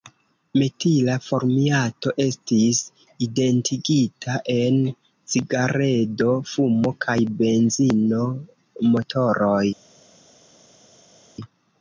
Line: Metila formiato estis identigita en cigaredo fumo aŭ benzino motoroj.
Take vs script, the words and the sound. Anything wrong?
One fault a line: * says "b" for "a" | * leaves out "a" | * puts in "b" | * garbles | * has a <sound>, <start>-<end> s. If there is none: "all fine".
* says "kaj" for "aŭ"